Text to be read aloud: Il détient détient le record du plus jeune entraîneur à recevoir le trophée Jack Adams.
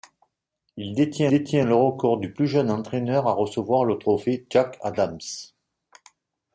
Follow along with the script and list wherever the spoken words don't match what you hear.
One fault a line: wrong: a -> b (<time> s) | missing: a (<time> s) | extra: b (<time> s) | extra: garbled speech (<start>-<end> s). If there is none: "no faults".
no faults